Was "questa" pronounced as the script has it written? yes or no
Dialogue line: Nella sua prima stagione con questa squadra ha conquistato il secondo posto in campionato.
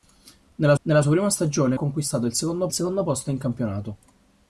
no